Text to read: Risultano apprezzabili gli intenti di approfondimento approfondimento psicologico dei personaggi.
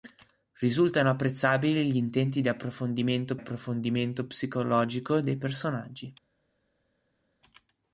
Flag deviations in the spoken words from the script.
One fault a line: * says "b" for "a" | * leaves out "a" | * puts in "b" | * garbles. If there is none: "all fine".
all fine